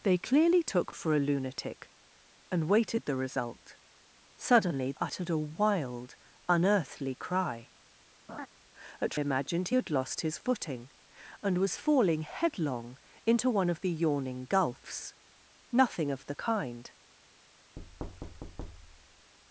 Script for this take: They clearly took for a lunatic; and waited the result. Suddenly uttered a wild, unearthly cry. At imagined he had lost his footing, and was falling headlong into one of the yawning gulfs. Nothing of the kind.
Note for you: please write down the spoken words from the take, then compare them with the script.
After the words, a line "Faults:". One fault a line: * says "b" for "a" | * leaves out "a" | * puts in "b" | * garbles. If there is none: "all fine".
They clearly took for a lunatic; and waited the result. Suddenly uttered a wild, unearthly cry. At imagined he had lost his footing, and was falling headlong into one of the yawning gulfs. Nothing of the kind.
Faults:
all fine